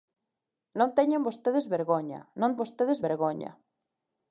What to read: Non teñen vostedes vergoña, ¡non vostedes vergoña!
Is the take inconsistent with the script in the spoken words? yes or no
no